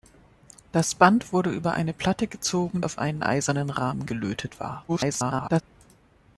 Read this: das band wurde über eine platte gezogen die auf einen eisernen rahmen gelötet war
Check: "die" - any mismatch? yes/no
yes